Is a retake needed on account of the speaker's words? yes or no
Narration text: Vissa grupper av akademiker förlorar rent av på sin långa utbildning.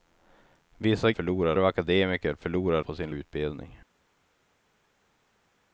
yes